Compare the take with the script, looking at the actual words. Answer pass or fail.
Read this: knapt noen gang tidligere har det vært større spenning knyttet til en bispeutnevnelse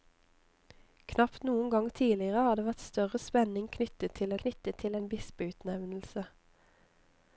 fail